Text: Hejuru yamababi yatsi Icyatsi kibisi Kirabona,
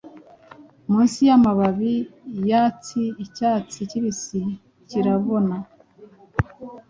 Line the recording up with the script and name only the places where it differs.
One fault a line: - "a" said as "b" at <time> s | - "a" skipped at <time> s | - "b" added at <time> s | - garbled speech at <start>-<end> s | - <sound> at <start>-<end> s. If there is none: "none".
- "Hejuru" said as "Munsi" at 0.9 s